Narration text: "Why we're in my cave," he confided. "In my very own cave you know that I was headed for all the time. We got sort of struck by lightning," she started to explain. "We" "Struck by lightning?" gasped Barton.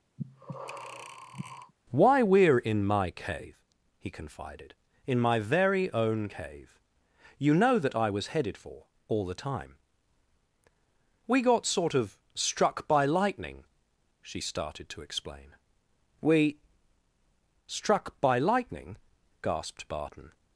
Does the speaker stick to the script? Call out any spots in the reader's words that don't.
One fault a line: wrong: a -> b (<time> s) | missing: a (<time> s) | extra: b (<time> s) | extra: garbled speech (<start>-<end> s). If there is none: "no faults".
no faults